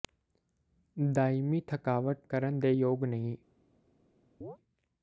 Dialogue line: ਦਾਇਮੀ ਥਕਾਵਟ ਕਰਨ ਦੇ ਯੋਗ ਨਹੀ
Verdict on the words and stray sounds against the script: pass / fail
fail